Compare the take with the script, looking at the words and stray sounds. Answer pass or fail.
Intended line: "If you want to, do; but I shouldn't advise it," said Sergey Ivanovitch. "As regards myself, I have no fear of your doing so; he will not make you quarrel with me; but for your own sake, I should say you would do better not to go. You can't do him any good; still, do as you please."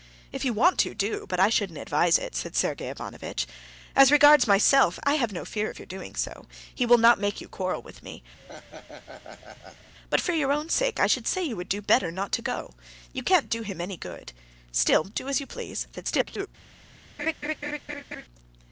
fail